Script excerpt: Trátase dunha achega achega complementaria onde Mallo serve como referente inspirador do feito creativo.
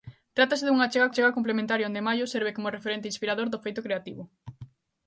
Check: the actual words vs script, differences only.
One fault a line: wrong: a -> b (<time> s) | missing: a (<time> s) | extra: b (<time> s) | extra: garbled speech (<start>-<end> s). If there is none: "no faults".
no faults